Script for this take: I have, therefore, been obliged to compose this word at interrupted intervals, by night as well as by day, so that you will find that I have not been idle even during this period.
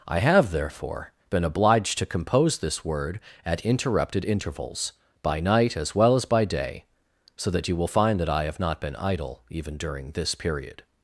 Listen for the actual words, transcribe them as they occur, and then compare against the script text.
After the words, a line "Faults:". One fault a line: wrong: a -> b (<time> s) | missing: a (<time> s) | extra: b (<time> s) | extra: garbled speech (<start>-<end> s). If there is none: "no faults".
I have, therefore, been obliged to compose this word at interrupted intervals, by night as well as by day, so that you will find that I have not been idle even during this period.
Faults:
no faults